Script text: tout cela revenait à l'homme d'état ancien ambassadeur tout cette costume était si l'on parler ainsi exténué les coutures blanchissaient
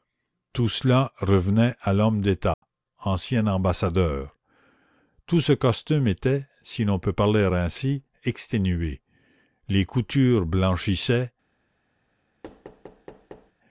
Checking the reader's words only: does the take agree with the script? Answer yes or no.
no